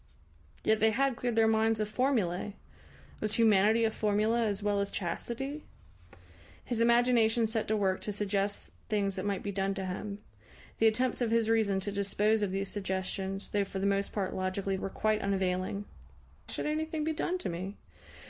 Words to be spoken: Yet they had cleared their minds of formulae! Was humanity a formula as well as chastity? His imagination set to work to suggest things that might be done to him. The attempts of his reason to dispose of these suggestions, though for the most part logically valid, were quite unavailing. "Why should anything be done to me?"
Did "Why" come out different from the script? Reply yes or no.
yes